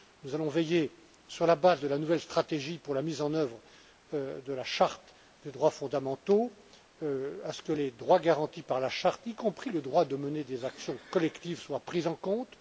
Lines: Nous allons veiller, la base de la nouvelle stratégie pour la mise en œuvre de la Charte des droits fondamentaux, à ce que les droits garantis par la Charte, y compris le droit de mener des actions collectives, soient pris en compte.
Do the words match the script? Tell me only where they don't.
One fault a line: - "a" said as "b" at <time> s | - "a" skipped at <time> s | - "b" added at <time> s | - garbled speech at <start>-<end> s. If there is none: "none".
- "sur" added at 1.3 s